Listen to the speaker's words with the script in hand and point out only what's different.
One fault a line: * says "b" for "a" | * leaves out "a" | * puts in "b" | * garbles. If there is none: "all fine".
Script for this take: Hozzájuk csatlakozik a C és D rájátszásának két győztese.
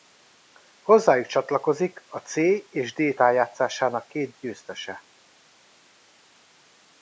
all fine